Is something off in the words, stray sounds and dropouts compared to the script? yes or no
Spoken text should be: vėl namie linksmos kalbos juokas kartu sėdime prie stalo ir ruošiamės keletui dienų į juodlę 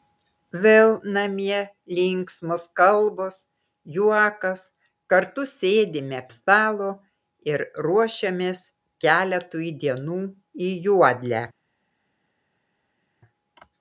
yes